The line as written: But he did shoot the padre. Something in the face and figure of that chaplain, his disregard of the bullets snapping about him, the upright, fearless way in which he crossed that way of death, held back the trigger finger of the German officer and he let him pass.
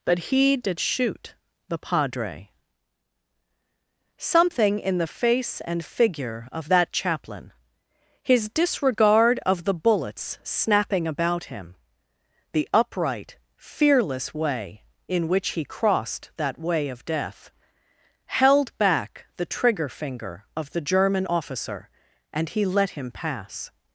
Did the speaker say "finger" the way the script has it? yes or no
yes